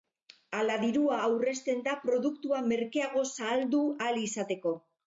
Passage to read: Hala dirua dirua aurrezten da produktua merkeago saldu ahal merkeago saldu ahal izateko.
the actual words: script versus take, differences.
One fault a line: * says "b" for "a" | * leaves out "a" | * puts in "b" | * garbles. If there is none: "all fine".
* leaves out "dirua"
* leaves out "merkeago saldu ahal"